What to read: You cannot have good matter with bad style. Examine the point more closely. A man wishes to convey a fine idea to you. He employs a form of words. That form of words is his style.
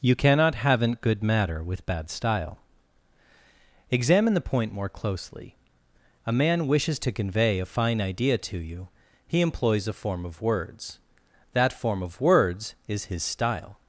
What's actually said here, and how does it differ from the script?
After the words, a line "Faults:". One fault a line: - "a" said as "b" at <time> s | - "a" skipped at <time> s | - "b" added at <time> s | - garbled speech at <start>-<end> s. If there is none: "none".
You cannot haven't good matter with bad style. Examine the point more closely. A man wishes to convey a fine idea to you. He employs a form of words. That form of words is his style.
Faults:
- "have" said as "haven't" at 0.6 s